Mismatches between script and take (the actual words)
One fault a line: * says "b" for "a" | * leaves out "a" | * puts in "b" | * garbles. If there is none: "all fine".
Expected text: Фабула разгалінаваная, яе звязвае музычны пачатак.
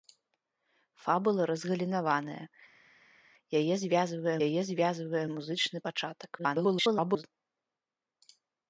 * puts in "яе звязвае"
* garbles